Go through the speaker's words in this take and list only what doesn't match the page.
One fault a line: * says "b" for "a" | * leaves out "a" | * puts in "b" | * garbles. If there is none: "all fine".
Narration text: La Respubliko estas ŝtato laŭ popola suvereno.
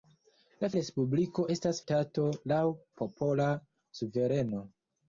all fine